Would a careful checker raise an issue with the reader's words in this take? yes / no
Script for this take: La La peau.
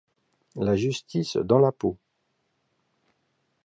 yes